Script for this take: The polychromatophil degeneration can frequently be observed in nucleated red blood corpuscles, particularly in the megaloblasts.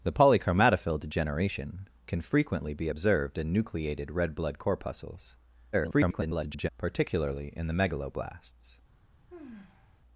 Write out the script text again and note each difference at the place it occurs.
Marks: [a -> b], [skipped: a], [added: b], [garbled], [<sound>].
The polychromatophil degeneration can frequently be observed in nucleated red blood corpuscles, [garbled] particularly in the megaloblasts. [sigh]